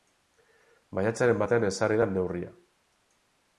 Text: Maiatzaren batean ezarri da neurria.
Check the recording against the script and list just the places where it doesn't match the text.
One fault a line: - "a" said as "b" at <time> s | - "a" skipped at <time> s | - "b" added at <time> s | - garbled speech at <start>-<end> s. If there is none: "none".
none